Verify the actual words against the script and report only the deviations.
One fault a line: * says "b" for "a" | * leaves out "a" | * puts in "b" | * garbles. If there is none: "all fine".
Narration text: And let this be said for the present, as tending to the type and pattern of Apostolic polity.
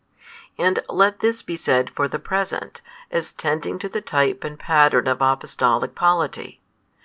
all fine